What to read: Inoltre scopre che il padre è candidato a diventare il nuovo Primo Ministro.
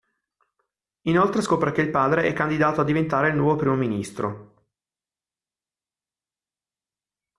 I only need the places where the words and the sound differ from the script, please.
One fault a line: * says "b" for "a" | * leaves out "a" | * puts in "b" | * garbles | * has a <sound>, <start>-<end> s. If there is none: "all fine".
all fine